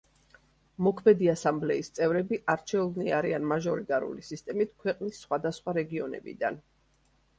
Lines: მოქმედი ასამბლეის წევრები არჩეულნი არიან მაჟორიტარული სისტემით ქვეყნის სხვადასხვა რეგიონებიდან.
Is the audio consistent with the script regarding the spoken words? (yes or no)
yes